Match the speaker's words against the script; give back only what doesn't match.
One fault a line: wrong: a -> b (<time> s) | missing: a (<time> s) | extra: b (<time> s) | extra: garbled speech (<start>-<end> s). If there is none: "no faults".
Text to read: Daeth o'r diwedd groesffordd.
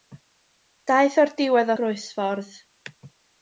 no faults